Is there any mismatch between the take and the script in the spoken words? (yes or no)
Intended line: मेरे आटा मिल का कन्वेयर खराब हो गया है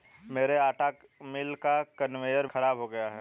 no